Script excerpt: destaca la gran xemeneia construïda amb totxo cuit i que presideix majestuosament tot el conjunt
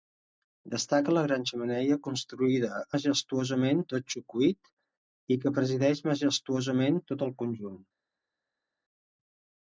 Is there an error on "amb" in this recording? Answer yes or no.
yes